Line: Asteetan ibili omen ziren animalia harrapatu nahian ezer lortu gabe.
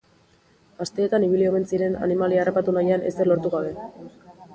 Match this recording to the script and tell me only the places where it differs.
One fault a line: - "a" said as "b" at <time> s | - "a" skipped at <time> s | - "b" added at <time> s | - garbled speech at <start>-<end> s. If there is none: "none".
none